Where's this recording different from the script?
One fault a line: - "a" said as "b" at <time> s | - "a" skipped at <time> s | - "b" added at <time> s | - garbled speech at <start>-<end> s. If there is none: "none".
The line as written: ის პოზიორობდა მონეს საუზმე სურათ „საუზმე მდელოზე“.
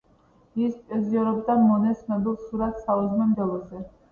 - "საუზმე" said as "ცნობილ" at 2.0 s